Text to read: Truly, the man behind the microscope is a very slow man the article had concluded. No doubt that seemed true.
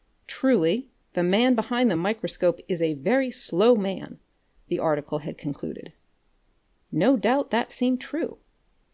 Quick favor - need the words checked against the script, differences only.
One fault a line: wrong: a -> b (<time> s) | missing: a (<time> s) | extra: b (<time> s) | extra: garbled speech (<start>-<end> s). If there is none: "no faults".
no faults